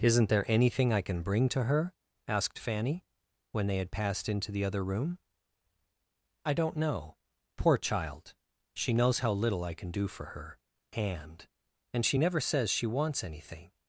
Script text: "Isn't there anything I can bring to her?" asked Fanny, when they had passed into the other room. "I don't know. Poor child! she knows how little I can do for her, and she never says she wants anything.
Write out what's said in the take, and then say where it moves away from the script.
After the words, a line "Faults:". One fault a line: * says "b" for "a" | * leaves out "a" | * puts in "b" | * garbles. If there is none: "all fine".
"Isn't there anything I can bring to her?" asked Fanny, when they had passed into the other room. "I don't know. Poor child! she knows how little I can do for her, and and she never says she wants anything.
Faults:
* puts in "and"